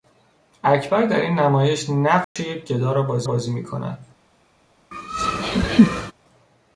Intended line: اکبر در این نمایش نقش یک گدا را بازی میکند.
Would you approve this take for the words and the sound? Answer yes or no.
no